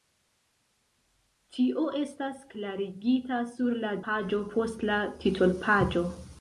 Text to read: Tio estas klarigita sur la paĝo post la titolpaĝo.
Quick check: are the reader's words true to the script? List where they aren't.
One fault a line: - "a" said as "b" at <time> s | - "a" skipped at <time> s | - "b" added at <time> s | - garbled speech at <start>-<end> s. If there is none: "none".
none